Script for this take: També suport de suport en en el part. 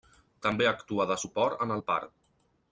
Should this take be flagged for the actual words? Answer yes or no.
yes